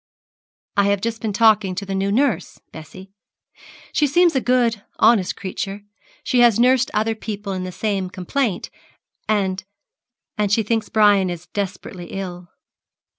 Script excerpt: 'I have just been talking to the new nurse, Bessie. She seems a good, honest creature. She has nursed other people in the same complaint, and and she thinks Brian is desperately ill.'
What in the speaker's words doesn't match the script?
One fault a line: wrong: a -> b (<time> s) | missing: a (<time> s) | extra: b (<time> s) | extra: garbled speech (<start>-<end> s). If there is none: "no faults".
no faults